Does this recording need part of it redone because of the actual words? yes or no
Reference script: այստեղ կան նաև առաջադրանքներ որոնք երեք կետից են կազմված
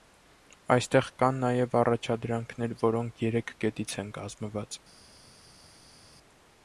no